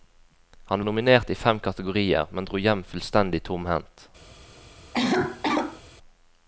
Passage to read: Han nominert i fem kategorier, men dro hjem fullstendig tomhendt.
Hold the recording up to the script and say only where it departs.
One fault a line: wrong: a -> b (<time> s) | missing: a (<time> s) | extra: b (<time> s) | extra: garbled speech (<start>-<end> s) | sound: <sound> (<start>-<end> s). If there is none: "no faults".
sound: cough (4.9-5.8 s)